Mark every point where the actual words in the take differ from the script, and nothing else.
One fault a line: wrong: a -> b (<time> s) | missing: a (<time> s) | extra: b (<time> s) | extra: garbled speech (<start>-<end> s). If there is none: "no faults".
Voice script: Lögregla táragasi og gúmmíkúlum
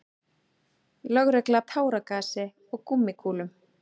no faults